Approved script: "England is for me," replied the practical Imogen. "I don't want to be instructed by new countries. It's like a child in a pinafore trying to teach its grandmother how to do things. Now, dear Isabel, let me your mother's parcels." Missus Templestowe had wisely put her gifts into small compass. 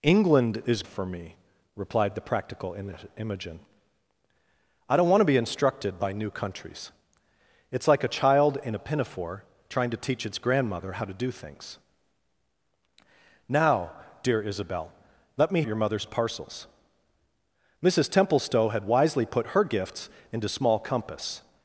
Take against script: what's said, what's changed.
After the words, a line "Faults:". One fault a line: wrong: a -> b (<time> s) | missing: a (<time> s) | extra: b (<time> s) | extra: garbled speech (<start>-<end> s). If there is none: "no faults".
"England is for me," replied the practical Imogen. "I don't want to be instructed by new countries. It's like a child in a pinafore trying to teach its grandmother how to do things. Now, dear Isabel, let me your mother's parcels." Missus Templestowe had wisely put her gifts into small compass.
Faults:
no faults